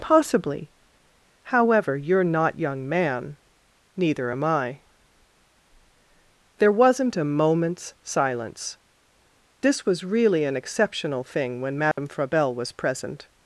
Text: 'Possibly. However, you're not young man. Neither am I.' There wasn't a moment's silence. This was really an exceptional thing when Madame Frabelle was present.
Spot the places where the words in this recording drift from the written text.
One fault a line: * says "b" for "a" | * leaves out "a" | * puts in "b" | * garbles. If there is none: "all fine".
all fine